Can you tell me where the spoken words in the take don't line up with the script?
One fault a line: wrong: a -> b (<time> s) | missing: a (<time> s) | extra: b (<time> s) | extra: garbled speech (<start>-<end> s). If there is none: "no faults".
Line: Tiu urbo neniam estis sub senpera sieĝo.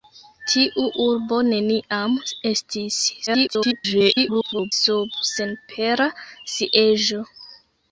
extra: garbled speech (3.3-4.7 s)